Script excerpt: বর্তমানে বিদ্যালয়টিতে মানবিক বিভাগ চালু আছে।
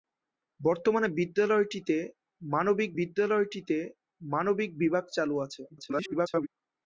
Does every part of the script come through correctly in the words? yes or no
no